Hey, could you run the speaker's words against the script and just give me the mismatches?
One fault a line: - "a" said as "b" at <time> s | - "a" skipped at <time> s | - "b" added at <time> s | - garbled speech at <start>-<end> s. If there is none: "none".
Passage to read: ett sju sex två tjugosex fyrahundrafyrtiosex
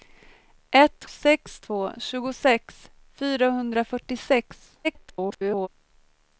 - "sju" skipped at 1.1 s
- garbled speech at 4.8-5.7 s